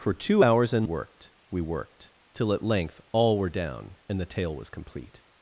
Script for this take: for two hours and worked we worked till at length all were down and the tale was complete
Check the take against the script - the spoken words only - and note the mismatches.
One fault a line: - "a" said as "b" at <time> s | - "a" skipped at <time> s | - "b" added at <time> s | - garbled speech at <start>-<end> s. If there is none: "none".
none